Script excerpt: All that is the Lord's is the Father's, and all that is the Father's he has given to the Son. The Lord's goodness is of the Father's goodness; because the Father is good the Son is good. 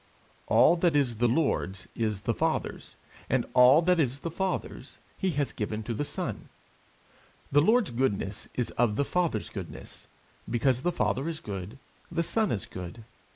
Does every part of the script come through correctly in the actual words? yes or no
yes